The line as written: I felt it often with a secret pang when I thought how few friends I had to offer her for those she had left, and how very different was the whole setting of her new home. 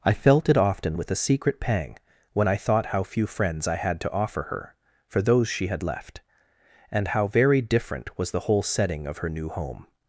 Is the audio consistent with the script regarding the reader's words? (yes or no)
yes